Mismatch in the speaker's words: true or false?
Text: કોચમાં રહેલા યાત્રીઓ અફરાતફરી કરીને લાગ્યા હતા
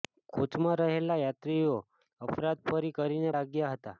false